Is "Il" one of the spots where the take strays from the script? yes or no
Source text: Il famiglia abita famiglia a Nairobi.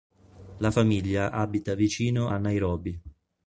yes